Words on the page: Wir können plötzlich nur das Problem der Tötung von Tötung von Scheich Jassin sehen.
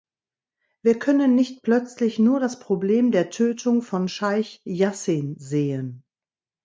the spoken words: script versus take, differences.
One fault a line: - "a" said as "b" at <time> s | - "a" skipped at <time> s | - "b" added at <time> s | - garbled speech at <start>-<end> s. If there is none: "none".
- "nicht" added at 1.4 s
- "Tötung von" skipped at 4.1 s